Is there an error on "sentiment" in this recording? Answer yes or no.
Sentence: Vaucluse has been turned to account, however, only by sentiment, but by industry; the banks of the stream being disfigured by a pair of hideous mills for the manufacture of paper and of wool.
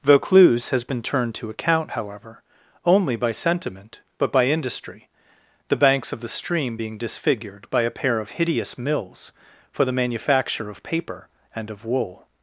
no